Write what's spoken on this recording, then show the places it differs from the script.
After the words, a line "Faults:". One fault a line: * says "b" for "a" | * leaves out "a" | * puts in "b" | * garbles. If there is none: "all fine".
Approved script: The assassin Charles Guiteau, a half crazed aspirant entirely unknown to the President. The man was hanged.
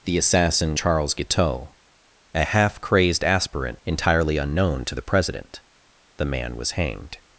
The assassin Charles Guiteau, a half crazed aspirant entirely unknown to the President. The man was hanged.
Faults:
all fine